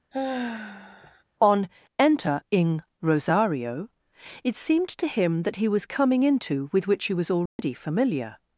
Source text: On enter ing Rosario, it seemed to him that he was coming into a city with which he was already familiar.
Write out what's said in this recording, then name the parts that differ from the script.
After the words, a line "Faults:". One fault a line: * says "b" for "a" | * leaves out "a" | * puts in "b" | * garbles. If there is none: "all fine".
On enter ing Rosario, it seemed to him that he was coming into with which he was already familiar.
Faults:
* leaves out "a city"